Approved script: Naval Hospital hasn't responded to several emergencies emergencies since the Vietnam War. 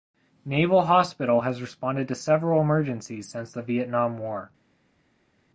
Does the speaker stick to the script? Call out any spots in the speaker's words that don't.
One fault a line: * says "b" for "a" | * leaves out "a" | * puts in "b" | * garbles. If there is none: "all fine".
* says "has" for "hasn't"
* leaves out "emergencies"